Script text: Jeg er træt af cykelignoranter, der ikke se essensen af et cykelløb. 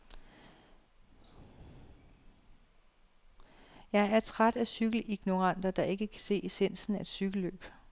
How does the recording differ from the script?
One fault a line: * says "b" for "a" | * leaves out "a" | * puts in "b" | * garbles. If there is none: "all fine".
* puts in "kan"